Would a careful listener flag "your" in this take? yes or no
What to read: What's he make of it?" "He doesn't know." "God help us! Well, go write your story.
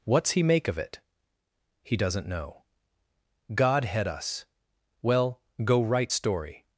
yes